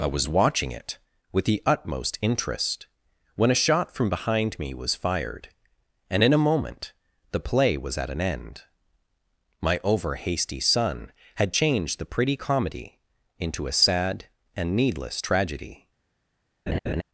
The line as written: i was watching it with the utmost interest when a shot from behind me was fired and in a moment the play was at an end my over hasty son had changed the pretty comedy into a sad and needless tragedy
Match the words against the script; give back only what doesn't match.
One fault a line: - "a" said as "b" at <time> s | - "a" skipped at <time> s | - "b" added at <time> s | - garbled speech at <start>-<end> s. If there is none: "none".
none